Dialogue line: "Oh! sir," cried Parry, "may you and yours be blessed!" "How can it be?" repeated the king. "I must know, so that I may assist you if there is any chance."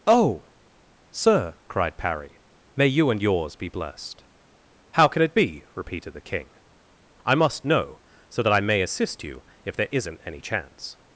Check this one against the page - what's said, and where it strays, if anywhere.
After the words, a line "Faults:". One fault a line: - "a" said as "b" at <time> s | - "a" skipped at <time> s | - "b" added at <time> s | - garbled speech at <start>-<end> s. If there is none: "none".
"Oh! sir," cried Parry, "may you and yours be blessed!" "How can it be?" repeated the king. "I must know, so that I may assist you if there isn't any chance."
Faults:
- "is" said as "isn't" at 9.9 s